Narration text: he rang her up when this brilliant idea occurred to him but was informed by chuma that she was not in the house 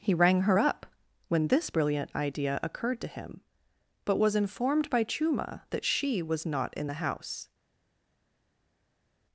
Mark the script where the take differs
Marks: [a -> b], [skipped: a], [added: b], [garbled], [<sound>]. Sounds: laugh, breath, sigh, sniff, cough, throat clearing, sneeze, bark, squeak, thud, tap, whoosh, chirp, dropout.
he rang her up when this brilliant idea occurred to him but was informed by chuma that she was not in the house